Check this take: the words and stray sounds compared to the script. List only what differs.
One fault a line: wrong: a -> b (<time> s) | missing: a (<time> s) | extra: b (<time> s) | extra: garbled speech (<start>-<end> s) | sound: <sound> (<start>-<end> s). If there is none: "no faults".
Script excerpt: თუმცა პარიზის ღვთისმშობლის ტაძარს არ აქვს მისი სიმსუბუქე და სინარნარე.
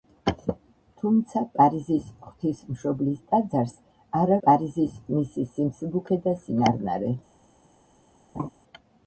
wrong: აქვს -> პარიზის (4.4 s)
sound: laugh (8.3-8.5 s)